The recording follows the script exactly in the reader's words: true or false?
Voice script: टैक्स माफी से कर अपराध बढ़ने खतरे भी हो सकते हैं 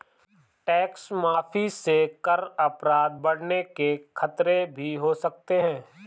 false